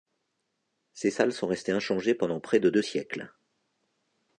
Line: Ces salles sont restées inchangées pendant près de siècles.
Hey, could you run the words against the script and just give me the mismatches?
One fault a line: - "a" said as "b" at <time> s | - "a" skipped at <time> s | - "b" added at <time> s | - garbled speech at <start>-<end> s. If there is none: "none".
- "deux" added at 2.7 s